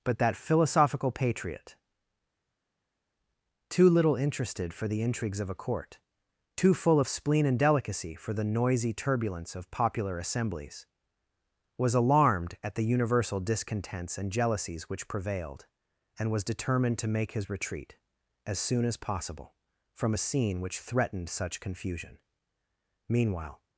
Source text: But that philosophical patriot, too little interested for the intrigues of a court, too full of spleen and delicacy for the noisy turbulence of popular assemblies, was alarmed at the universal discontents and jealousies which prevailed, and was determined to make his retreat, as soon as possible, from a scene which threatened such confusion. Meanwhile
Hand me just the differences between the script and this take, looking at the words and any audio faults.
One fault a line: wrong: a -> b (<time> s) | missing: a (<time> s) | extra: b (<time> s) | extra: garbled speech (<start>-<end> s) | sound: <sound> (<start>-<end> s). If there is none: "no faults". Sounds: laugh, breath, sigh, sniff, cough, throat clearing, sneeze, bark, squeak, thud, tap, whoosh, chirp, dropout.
no faults